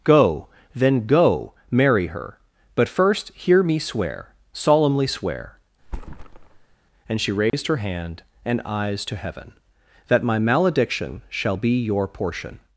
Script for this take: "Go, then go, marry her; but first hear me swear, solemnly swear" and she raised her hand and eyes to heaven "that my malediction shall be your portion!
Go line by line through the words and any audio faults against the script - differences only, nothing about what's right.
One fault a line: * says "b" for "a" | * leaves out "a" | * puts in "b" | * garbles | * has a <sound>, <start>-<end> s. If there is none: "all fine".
* has a thud, 5.8-6.8 s
* has a dropout, 7.5-7.5 s